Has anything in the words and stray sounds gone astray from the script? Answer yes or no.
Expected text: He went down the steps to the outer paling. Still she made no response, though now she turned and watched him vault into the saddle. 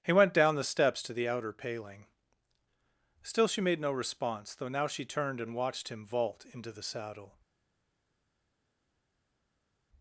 no